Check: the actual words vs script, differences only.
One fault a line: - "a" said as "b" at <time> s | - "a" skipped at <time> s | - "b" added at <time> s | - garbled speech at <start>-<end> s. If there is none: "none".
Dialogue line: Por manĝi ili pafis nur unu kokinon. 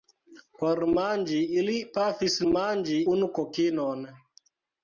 - "nur" said as "manĝi" at 2.5 s